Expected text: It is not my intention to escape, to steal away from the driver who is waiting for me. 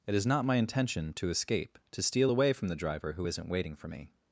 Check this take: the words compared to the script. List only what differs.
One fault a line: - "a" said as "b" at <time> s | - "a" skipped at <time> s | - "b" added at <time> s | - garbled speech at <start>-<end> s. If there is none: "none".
- "is" said as "isn't" at 3.3 s